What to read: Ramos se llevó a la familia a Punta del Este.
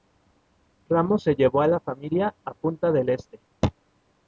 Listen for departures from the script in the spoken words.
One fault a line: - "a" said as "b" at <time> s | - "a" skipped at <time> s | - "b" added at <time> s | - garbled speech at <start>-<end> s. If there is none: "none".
none